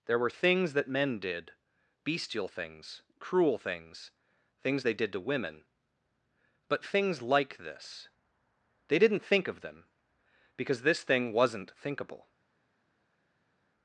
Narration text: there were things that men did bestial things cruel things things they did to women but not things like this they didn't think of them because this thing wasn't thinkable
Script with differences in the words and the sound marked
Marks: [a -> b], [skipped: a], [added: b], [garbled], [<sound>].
there were things that men did bestial things cruel things things they did to women but [skipped: not] things like this they didn't think of them because this thing wasn't thinkable